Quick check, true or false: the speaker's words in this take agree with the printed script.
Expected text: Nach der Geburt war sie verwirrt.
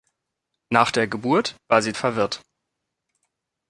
true